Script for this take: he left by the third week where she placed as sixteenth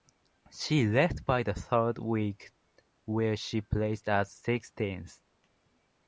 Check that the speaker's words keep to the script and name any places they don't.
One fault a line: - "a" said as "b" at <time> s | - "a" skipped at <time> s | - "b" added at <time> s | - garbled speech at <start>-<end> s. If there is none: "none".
- "he" said as "she" at 0.5 s